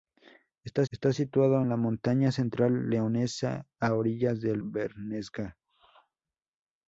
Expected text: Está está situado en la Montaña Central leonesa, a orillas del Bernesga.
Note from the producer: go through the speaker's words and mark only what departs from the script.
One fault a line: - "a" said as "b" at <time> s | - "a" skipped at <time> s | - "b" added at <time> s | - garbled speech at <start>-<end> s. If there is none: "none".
none